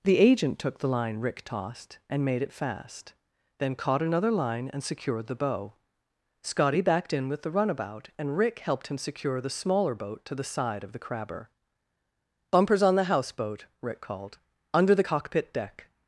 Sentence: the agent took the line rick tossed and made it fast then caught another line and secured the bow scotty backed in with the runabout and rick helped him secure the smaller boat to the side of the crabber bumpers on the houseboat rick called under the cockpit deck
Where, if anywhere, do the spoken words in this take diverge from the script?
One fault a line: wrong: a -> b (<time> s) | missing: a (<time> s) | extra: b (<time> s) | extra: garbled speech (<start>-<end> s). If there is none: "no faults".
no faults